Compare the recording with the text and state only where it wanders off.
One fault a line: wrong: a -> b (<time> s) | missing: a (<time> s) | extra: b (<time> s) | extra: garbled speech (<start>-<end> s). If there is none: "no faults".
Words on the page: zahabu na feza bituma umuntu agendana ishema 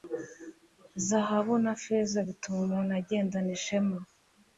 no faults